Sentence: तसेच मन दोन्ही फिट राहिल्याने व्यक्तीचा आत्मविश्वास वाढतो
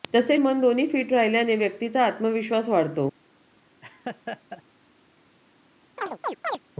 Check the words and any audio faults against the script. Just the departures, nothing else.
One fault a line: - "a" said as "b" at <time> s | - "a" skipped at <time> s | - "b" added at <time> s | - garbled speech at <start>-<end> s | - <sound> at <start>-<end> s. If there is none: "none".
- laugh at 3.8-4.6 s
- chirp at 6.0-6.6 s